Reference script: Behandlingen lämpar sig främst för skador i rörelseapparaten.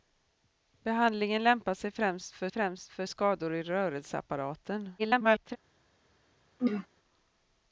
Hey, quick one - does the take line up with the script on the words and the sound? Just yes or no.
no